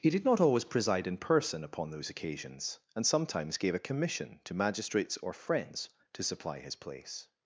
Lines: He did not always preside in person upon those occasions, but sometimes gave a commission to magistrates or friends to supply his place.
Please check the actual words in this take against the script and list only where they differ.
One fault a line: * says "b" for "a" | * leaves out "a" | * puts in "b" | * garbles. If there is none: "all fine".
* says "and" for "but"